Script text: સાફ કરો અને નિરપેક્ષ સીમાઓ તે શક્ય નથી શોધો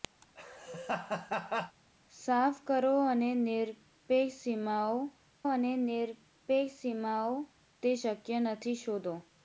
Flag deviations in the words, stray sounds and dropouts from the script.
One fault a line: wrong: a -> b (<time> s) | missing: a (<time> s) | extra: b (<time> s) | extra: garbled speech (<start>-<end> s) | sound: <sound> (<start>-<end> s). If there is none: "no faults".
sound: laugh (0.2-1.8 s)
extra: અને નિરપેક્ષ સીમાઓ (5.5 s)